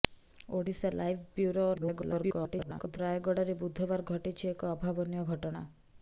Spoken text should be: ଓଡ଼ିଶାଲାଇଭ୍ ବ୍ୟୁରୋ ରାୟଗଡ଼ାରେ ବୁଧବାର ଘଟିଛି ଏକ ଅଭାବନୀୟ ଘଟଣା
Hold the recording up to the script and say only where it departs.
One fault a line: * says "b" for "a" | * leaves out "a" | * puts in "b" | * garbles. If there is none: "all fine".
* garbles